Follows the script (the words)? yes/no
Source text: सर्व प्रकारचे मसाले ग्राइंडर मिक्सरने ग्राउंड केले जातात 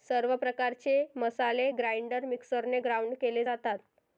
yes